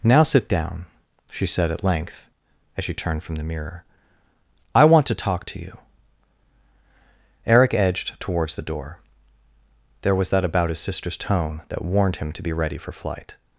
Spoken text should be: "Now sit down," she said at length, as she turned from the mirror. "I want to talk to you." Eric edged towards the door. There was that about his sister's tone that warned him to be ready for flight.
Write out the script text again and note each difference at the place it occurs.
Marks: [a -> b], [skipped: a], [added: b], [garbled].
"Now sit down," she said at length, as she turned from the mirror. "I want to talk to you." Eric edged towards the door. There was that about his sister's tone that warned him to be ready for flight.